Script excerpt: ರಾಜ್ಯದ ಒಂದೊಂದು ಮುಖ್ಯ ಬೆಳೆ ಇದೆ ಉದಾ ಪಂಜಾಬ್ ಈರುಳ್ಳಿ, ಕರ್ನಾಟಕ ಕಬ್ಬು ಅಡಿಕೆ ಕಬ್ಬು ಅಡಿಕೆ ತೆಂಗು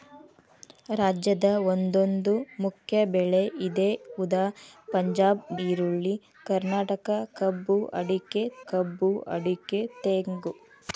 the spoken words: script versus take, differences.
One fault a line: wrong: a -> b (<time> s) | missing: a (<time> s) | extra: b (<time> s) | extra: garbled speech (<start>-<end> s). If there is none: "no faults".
no faults